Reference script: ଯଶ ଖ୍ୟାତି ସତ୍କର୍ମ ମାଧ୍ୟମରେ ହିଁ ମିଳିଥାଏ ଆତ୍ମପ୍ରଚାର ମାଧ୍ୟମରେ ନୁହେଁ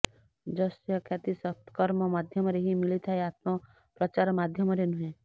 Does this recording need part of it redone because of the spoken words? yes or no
no